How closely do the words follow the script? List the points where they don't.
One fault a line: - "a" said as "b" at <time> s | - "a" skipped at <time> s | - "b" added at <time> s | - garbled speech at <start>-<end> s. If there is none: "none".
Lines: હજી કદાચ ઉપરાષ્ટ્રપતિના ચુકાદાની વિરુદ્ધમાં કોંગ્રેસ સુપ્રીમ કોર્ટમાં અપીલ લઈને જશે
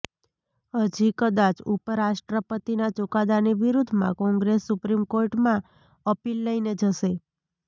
none